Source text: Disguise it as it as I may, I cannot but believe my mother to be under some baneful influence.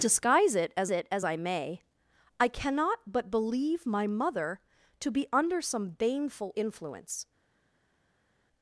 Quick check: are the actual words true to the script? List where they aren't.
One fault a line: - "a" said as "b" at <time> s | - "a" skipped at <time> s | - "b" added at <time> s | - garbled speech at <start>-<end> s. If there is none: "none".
none